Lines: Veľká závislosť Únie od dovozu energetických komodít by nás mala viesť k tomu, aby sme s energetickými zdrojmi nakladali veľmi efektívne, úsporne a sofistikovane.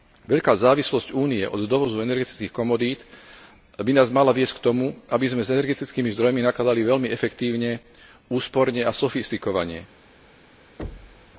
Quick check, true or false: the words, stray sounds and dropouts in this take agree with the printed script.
false